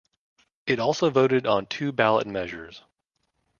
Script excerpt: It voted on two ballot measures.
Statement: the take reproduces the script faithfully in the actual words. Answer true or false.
false